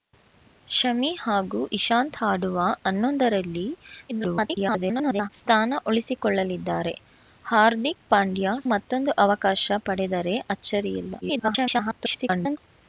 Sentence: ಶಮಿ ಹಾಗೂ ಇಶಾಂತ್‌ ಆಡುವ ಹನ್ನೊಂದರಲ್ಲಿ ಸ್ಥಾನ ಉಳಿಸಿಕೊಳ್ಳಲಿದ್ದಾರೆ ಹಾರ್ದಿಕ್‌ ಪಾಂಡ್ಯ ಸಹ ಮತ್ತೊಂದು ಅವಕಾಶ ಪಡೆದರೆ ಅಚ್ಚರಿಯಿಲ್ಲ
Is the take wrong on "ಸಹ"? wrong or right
wrong